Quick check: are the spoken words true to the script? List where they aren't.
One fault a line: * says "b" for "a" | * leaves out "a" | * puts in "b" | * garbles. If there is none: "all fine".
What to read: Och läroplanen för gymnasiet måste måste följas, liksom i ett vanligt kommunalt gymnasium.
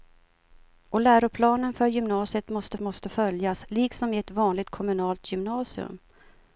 all fine